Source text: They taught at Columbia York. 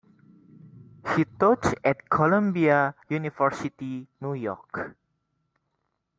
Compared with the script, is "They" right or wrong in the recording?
wrong